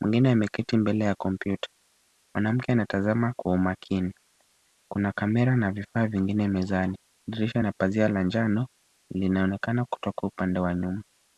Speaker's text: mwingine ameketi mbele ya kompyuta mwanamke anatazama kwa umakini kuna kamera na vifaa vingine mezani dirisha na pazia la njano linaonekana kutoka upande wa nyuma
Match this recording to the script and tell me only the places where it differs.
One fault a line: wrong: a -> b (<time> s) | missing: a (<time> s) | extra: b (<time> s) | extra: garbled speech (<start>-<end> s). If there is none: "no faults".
no faults